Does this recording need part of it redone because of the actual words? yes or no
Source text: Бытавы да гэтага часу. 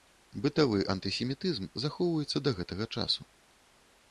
yes